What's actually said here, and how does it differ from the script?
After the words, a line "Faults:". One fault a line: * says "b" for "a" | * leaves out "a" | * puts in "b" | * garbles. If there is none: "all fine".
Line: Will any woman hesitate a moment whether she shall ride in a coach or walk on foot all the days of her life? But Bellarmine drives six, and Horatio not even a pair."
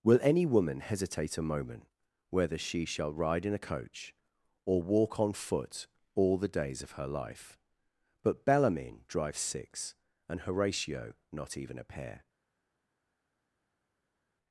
Will any woman hesitate a moment whether she shall ride in a coach or walk on foot all the days of her life? But Bellarmine drives six, and Horatio not even a pair."
Faults:
all fine